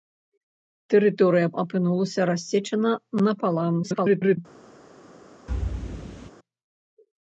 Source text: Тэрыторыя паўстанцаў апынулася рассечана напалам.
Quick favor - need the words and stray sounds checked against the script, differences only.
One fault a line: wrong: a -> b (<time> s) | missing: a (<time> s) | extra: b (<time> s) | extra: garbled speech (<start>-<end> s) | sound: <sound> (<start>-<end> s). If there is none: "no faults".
missing: паўстанцаў (1.5 s)
extra: garbled speech (3.8-4.4 s)
sound: thud (5.5-6.3 s)